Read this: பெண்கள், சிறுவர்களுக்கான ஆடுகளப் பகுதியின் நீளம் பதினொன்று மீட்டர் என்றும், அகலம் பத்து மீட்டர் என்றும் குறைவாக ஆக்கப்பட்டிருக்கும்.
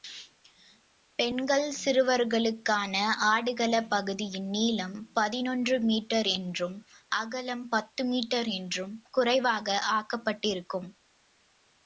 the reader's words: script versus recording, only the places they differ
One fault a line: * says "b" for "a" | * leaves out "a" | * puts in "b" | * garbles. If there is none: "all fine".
all fine